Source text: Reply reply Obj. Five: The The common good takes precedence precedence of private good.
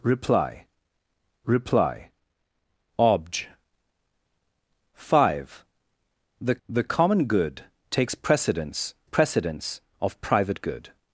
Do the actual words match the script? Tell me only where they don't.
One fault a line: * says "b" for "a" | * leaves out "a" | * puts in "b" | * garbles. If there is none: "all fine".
all fine